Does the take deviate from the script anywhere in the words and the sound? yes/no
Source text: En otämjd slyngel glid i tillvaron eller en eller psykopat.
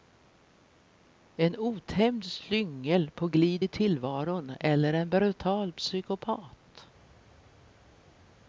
yes